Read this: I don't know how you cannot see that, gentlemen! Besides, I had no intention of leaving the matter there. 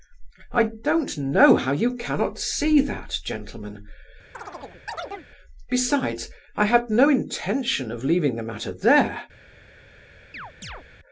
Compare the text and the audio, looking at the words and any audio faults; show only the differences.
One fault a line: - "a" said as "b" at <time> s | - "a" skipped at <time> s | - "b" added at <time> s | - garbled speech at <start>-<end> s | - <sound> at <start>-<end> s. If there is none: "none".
- chirp at 4.3-5.3 s
- chirp at 10.3-10.8 s